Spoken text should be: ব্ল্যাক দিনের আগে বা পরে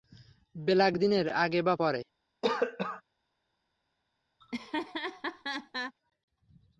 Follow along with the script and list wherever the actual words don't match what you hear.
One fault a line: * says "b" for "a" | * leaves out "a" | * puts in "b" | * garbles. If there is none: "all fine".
all fine